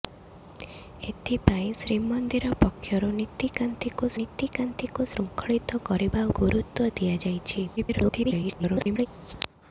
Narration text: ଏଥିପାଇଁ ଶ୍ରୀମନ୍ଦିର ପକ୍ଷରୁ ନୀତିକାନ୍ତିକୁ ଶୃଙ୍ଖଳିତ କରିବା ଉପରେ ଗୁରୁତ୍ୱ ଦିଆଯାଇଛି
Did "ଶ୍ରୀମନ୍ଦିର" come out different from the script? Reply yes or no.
no